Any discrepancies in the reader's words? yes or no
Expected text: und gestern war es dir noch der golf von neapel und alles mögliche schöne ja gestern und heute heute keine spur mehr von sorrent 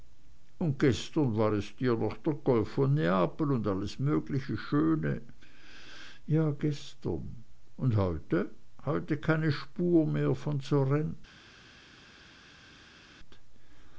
no